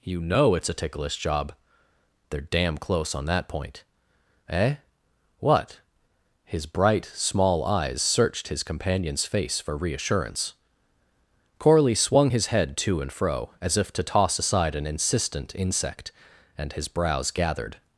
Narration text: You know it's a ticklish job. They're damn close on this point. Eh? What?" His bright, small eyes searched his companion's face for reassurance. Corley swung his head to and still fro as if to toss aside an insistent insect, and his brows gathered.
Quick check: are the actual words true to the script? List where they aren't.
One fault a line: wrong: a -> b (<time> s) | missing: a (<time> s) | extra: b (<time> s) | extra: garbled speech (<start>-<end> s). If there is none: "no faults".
wrong: this -> that (3.2 s)
missing: still (13.1 s)